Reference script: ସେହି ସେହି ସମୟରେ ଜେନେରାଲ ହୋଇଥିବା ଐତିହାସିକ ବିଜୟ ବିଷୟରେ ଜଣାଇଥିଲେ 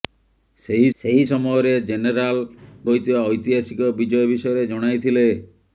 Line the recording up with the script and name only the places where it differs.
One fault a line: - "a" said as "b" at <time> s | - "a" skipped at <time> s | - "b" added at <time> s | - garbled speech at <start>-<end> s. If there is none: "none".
none